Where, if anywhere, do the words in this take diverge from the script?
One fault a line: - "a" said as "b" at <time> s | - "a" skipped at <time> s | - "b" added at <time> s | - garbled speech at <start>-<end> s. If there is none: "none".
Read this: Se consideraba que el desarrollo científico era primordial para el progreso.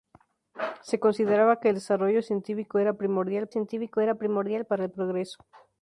- "científico era primordial" added at 3.5 s